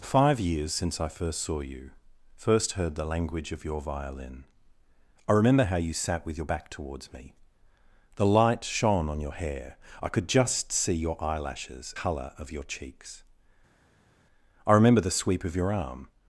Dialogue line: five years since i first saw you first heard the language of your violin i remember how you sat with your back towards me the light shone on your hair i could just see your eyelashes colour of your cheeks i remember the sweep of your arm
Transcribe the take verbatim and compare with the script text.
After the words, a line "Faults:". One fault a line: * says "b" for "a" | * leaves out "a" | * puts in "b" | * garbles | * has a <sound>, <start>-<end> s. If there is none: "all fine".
five years since i first saw you first heard the language of your violin i remember how you sat with your back towards me the light shone on your hair i could just see your eyelashes colour of your cheeks i remember the sweep of your arm
Faults:
all fine